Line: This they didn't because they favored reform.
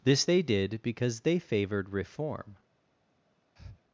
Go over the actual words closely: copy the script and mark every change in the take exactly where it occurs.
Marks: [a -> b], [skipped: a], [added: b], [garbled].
This they [didn't -> did] because they favored reform.